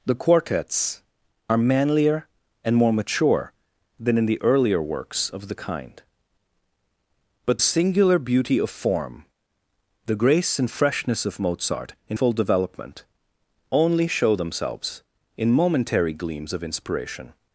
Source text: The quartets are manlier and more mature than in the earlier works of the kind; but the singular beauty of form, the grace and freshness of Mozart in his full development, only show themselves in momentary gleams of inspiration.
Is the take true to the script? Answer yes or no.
no